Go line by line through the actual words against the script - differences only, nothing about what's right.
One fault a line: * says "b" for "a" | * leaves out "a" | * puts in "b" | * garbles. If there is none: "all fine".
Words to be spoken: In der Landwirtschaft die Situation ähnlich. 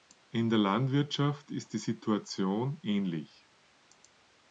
* puts in "ist"